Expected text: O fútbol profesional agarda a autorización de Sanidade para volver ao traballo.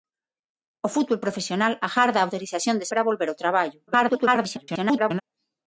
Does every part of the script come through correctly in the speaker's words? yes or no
no